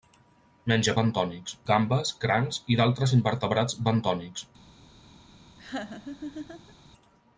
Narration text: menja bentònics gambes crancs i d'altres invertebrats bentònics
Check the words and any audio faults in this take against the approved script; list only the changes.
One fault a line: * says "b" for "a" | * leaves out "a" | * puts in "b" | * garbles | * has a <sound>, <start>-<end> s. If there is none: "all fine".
* has a laugh, 5.6-6.7 s